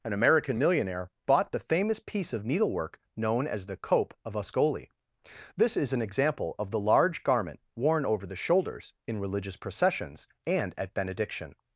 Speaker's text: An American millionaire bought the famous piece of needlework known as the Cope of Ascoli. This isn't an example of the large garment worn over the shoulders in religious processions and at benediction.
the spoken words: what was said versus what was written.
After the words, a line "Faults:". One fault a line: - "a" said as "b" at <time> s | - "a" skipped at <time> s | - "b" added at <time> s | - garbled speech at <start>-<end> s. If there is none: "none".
An American millionaire bought the famous piece of needlework known as the Cope of Ascoli. This is an example of the large garment worn over the shoulders in religious processions and at benediction.
Faults:
- "isn't" said as "is" at 5.8 s